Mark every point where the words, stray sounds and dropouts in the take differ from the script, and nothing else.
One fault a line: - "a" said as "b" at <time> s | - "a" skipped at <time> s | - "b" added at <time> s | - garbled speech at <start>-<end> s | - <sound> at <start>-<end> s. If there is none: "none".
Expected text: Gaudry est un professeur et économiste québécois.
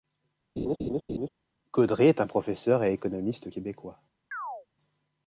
- laugh at 0.6-1.3 s
- chirp at 4.3-4.7 s